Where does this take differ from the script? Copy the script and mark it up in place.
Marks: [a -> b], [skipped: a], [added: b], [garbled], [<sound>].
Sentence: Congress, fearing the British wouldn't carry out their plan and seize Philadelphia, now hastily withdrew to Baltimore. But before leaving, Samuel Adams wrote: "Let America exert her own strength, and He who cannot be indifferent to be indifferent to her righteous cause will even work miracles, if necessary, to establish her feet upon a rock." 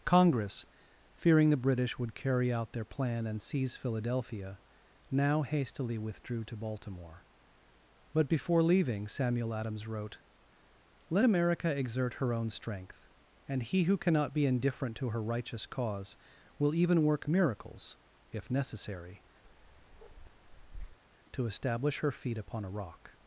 Congress, fearing the British [wouldn't -> would] carry out their plan and seize Philadelphia, now hastily withdrew to Baltimore. But before leaving, Samuel Adams wrote: "Let America exert her own strength, and He who cannot be indifferent to [skipped: be indifferent to] her righteous cause will even work miracles, if necessary, [bark] to establish her feet upon a rock."